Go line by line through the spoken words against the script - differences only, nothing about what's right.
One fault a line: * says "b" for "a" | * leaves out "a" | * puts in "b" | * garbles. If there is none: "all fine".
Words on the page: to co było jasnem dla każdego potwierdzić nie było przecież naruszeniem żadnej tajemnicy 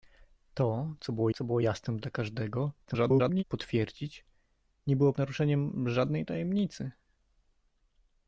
* puts in "co było"
* garbles
* leaves out "przecież"